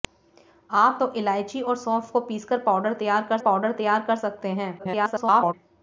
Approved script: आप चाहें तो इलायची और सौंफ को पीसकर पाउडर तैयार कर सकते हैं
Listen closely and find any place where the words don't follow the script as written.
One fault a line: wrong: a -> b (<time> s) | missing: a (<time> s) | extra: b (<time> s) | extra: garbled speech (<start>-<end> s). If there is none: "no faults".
missing: चाहें (1.0 s)
extra: पाउडर तैयार कर (3.4 s)
extra: garbled speech (4.8-5.5 s)